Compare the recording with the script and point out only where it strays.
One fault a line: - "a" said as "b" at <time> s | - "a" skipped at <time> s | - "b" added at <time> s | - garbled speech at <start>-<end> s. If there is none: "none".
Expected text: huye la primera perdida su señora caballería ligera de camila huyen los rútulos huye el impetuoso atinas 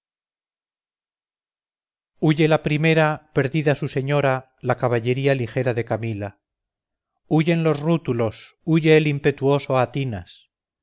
- "la" added at 4.6 s